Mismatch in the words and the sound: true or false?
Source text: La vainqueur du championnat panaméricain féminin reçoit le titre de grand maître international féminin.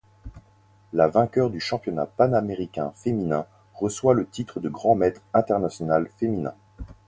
false